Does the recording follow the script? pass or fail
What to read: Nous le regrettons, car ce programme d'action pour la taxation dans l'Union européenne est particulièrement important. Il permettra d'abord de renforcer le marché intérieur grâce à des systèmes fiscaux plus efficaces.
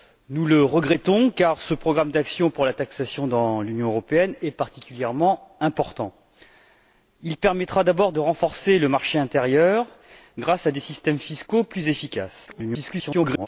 fail